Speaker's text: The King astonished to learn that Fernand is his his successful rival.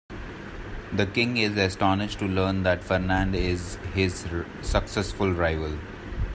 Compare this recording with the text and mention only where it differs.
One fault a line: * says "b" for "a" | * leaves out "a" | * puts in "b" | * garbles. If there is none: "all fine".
* puts in "is"
* leaves out "his"